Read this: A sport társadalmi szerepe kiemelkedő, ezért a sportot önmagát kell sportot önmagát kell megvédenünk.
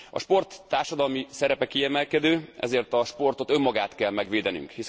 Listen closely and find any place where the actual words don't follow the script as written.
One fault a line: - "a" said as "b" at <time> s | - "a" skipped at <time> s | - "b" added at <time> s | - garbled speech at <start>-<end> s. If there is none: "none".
- "sportot önmagát kell" skipped at 4.1 s